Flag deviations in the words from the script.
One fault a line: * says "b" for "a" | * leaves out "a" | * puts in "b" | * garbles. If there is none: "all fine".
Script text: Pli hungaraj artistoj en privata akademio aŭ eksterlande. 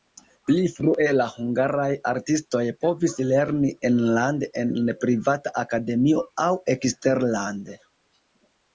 * puts in "frue la"
* puts in "povis lerni enlande"